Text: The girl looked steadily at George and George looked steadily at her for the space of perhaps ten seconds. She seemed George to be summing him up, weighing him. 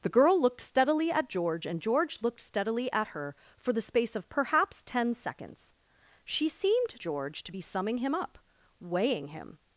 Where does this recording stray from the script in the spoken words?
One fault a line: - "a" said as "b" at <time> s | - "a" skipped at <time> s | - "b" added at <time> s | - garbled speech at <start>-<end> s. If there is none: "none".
none